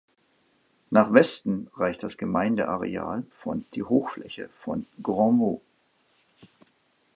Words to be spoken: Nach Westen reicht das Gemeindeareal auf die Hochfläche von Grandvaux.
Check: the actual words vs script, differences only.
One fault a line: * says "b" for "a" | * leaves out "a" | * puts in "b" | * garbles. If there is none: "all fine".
* says "von" for "auf"